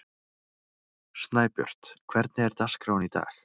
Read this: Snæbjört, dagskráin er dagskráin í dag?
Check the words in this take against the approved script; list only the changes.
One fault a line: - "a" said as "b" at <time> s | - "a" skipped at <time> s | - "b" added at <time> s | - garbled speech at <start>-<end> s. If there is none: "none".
- "dagskráin" said as "hvernig" at 2.1 s